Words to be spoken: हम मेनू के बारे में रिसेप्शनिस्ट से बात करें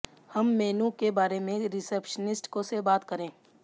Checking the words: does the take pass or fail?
pass